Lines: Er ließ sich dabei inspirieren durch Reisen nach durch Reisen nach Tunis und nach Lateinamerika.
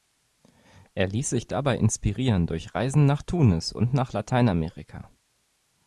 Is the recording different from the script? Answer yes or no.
yes